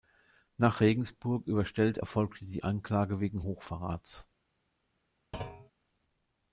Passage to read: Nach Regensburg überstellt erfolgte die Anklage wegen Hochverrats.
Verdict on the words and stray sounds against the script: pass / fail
fail